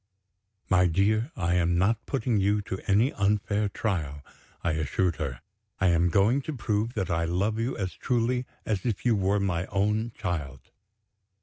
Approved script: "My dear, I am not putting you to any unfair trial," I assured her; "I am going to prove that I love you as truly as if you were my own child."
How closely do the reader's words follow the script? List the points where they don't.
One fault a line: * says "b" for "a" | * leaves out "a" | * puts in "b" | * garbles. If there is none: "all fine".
all fine